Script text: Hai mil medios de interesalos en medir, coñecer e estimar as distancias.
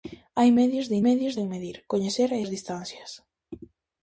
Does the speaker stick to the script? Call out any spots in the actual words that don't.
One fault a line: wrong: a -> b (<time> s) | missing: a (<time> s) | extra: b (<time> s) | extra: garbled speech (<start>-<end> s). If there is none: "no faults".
missing: mil (0.5 s)
wrong: interesalos -> medios (1.1 s)
missing: estimar (2.4 s)